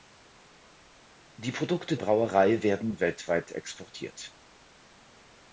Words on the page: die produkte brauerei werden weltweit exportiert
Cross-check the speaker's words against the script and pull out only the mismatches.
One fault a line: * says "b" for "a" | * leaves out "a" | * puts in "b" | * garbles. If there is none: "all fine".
all fine